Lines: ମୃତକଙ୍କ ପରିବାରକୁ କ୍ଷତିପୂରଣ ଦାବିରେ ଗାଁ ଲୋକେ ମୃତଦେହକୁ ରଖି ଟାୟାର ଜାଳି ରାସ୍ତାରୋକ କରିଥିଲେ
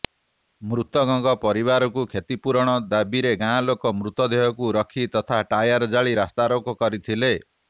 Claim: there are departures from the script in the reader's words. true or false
true